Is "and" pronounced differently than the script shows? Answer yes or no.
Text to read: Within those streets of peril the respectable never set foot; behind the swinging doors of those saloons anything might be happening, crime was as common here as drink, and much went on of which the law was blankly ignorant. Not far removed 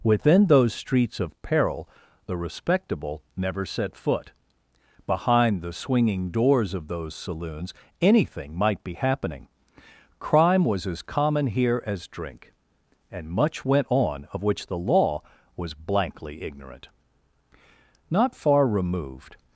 no